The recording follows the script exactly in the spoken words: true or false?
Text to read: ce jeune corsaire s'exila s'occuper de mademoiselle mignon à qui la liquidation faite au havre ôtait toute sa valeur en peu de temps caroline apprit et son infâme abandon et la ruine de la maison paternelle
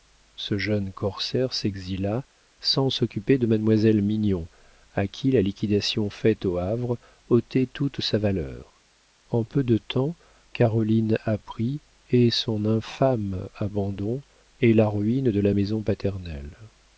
false